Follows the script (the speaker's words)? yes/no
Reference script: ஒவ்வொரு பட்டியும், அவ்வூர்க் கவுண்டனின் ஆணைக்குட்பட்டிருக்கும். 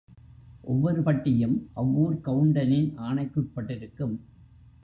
yes